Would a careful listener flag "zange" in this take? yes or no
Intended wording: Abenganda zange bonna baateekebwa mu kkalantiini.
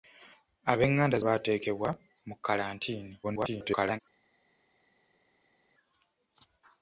yes